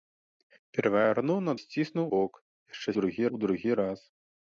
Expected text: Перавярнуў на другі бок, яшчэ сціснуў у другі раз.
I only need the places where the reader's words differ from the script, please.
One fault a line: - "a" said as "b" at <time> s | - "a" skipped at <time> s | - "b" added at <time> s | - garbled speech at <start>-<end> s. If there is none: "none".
- "другі" said as "сціснуў" at 1.6 s
- "сціснуў" said as "другі" at 3.0 s